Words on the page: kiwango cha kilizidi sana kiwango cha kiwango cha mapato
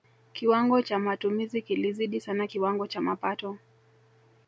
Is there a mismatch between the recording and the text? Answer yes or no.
yes